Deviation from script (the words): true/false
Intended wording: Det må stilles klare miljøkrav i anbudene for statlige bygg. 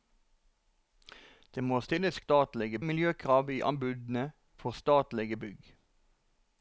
true